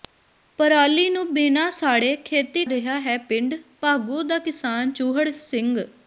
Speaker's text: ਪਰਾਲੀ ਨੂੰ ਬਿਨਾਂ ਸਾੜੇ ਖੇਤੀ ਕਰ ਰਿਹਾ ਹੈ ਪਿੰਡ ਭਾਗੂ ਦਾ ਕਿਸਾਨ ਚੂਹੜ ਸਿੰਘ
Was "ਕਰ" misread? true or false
true